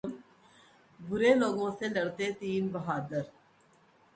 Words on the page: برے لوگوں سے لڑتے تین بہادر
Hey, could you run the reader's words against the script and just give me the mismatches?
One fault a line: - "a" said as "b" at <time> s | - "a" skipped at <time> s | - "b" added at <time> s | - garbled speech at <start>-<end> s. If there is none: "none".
none